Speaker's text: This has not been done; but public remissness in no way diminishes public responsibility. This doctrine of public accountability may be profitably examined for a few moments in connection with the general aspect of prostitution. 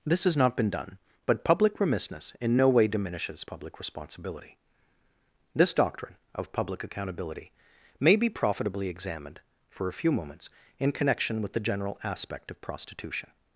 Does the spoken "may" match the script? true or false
true